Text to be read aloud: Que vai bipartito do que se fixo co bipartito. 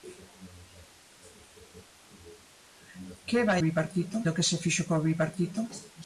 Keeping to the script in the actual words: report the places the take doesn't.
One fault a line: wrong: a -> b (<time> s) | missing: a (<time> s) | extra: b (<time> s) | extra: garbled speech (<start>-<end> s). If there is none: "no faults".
no faults